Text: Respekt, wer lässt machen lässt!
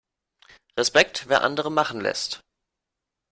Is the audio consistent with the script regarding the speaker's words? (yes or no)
no